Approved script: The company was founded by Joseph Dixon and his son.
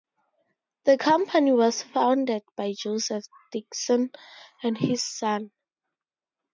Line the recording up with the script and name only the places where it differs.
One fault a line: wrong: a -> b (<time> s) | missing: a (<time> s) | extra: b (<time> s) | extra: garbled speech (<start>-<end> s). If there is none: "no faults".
no faults